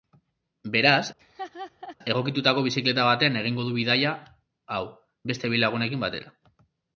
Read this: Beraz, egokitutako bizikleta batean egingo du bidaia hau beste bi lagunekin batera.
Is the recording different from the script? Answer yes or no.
no